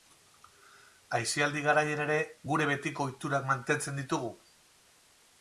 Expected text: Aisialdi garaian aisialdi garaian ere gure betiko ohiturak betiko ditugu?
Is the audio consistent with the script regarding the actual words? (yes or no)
no